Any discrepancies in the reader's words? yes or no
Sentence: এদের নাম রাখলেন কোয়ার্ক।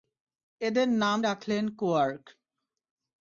no